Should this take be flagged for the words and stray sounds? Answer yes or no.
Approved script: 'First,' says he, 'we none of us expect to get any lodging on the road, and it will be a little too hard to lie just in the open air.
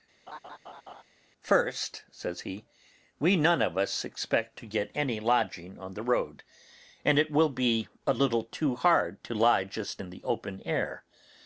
yes